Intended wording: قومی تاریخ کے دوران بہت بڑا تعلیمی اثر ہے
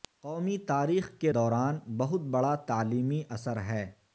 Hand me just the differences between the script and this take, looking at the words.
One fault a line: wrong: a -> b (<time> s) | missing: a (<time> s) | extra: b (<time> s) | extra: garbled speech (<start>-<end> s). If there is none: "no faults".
no faults